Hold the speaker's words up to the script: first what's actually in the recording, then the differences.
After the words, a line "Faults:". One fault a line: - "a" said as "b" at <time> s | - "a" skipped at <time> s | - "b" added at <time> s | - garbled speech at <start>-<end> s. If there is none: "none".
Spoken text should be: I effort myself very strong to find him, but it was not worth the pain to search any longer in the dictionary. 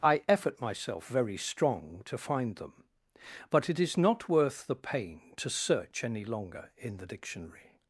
I effort myself very strong to find them, but it is not worth the pain to search any longer in the dictionary.
Faults:
- "him" said as "them" at 2.5 s
- "was" said as "is" at 3.8 s